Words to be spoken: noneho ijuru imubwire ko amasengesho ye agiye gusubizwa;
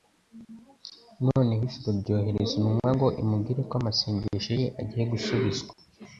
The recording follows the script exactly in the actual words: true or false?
false